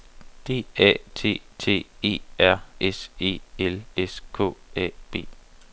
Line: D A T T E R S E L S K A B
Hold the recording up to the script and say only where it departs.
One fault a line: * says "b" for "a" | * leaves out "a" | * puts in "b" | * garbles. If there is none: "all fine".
all fine